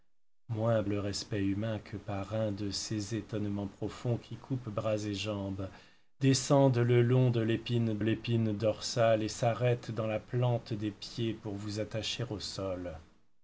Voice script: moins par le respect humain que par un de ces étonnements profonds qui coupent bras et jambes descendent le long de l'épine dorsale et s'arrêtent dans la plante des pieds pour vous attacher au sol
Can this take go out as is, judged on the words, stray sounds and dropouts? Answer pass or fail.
fail